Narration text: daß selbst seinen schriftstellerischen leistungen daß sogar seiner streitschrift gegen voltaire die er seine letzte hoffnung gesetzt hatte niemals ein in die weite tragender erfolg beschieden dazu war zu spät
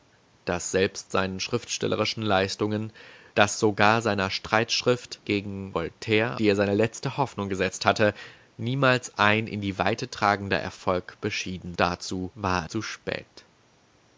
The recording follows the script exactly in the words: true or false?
true